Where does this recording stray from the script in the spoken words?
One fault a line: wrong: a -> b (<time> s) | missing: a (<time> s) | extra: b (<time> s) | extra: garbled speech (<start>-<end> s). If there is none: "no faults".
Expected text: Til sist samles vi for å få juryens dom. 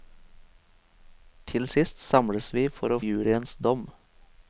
missing: få (3.0 s)